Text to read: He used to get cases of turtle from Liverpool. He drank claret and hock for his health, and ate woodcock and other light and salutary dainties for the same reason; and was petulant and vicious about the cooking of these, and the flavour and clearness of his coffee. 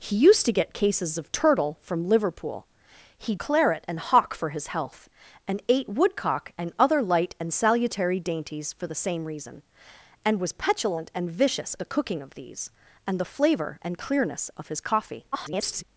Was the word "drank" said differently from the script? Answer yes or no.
yes